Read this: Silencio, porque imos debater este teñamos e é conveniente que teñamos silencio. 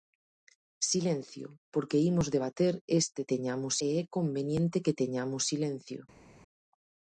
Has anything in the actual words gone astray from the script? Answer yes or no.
no